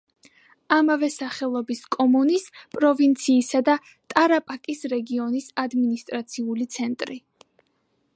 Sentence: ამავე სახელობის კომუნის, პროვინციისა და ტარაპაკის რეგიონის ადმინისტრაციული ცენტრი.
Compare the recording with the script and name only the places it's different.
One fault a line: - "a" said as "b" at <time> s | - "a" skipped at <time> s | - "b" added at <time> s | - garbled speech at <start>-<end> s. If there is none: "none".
none